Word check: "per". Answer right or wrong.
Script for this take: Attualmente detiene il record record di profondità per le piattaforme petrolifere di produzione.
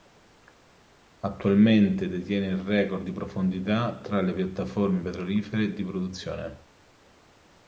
wrong